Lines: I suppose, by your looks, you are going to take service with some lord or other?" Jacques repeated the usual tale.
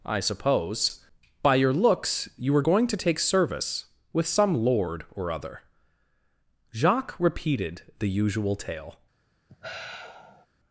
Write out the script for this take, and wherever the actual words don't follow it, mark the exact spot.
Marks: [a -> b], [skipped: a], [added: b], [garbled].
I suppose, by your looks, you [are -> were] going to take service with some lord or other?" Jacques repeated the usual tale.